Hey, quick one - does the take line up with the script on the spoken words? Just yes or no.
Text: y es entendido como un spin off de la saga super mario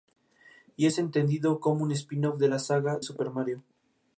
yes